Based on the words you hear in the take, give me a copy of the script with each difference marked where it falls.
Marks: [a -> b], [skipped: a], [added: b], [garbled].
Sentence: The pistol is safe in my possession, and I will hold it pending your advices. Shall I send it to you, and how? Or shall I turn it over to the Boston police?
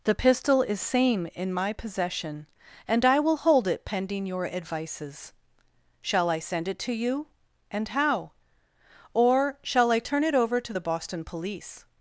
The pistol is [safe -> same] in my possession, and I will hold it pending your advices. Shall I send it to you, and how? Or shall I turn it over to the Boston police?